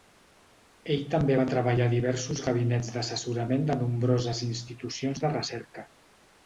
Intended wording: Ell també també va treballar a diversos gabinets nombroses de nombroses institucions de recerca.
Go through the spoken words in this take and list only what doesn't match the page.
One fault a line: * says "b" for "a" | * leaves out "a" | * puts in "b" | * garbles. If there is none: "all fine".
* leaves out "també"
* says "d'assessorament" for "nombroses"